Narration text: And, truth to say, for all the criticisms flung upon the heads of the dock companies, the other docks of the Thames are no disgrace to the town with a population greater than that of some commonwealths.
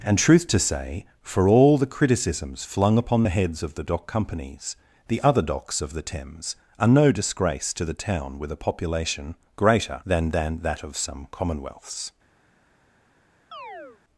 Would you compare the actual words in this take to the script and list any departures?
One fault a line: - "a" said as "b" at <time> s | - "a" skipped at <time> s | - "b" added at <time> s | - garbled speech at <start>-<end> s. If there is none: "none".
- "than" added at 10.3 s